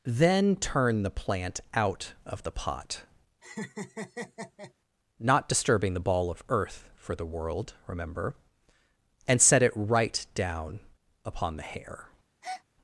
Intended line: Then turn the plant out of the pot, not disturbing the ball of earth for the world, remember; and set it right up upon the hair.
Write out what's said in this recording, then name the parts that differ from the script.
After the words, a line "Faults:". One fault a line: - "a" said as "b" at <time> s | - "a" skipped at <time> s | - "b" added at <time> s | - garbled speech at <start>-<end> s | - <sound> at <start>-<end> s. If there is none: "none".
Then turn the plant out of the pot, not disturbing the ball of earth for the world, remember; and set it right down upon the hair.
Faults:
- laugh at 3.4-4.7 s
- "up" said as "down" at 10.3 s
- breath at 12.4-12.6 s